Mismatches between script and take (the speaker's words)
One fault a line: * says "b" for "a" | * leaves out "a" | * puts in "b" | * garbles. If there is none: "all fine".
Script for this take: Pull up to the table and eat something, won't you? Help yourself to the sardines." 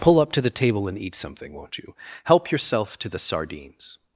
all fine